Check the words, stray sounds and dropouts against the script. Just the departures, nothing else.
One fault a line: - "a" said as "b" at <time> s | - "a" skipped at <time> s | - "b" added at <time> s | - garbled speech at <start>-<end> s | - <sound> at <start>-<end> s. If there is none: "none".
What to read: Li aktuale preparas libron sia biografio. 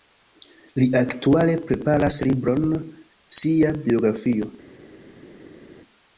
none